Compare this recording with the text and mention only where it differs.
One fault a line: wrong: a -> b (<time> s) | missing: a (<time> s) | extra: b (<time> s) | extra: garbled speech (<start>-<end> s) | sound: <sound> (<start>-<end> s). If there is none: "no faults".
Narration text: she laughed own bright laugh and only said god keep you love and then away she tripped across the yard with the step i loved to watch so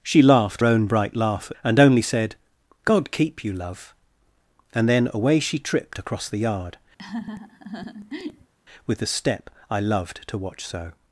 sound: laugh (7.0-8.5 s)